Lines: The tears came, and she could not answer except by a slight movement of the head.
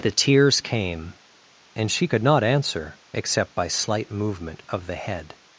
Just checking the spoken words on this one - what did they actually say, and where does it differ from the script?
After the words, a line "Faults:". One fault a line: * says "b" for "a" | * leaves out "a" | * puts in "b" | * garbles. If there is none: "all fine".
The tears came, and she could not answer except by slight movement of the head.
Faults:
* leaves out "a"